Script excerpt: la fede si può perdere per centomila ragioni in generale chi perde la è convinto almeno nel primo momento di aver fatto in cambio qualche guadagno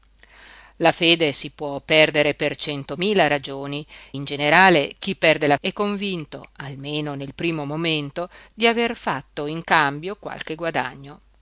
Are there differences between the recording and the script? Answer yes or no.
no